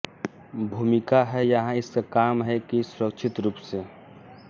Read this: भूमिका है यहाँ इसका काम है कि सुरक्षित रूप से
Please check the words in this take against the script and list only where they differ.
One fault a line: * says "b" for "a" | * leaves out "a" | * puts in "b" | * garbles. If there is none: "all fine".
all fine